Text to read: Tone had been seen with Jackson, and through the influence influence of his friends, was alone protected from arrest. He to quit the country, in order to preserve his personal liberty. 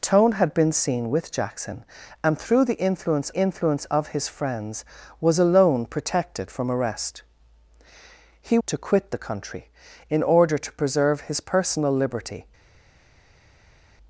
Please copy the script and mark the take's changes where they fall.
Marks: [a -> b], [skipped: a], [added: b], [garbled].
Tone had been seen with Jackson, and through the influence influence of his friends, was alone protected from arrest. He to quit the country, in order to preserve his personal liberty.